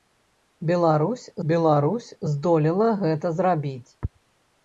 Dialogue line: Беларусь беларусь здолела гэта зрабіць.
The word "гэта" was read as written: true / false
true